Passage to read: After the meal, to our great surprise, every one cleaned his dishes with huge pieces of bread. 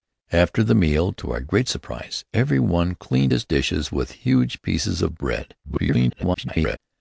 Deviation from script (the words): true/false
true